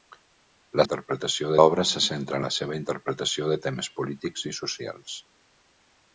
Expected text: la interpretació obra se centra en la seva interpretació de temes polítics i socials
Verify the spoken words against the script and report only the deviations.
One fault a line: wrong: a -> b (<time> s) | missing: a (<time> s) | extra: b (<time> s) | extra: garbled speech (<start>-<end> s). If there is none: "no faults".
no faults